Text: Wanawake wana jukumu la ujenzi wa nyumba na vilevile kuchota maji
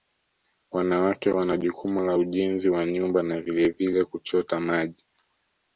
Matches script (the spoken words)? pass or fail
pass